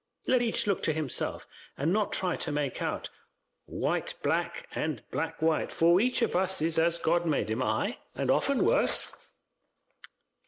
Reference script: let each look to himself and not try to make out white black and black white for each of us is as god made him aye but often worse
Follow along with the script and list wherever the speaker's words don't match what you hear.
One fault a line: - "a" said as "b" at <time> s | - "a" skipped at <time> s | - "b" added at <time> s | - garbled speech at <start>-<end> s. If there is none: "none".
- "but" said as "and" at 8.1 s